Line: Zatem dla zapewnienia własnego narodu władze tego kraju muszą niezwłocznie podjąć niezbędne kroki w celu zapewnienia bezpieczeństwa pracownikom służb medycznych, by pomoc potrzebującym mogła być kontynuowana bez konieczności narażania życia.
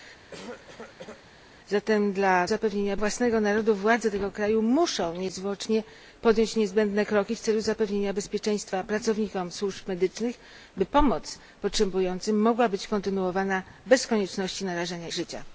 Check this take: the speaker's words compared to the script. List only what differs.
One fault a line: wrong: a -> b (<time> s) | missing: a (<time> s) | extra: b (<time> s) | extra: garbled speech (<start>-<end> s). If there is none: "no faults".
no faults